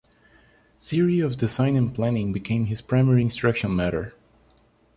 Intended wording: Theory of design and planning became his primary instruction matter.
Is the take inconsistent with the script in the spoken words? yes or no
no